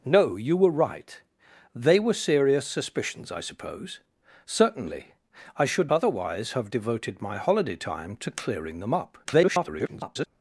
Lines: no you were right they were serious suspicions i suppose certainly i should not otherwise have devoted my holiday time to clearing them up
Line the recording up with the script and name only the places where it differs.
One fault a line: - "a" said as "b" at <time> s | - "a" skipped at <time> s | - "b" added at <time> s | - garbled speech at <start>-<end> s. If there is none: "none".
- "not" skipped at 5.9 s
- garbled speech at 9.2-10.3 s